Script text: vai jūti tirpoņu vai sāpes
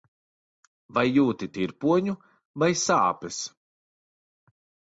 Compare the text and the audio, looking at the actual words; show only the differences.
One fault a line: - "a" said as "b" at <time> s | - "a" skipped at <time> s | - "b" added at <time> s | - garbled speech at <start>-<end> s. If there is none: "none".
none